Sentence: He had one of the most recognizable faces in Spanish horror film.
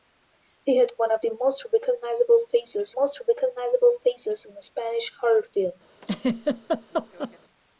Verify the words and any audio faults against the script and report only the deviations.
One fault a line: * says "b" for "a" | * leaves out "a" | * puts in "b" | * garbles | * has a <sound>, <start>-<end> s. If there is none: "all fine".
* puts in "most recognizable faces"
* has a laugh, 6.0-7.4 s